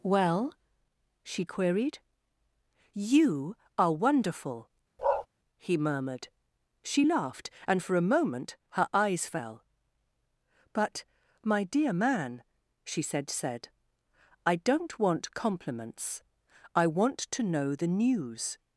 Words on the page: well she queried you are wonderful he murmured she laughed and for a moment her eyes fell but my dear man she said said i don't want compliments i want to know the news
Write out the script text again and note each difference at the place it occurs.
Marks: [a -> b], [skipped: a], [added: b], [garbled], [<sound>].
well she queried you are wonderful [bark] he murmured she laughed and for a moment her eyes fell but my dear man she said said i don't want compliments i want to know the news